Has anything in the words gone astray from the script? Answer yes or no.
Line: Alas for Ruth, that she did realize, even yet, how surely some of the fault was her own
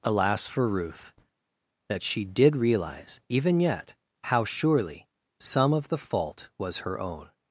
no